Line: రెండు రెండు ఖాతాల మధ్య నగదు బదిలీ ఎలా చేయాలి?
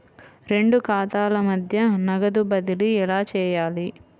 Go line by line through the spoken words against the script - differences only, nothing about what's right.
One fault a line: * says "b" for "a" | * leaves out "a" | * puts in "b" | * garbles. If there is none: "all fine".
* leaves out "రెండు"